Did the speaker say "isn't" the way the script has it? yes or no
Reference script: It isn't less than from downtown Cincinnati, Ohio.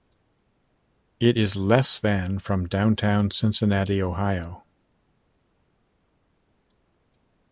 no